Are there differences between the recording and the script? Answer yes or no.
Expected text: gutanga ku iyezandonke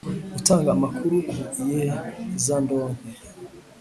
yes